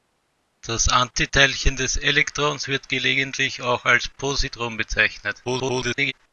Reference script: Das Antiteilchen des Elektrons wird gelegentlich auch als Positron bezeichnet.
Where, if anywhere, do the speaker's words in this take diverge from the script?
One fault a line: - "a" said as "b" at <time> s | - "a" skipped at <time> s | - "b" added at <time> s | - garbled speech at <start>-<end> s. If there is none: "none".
- garbled speech at 5.4-6.1 s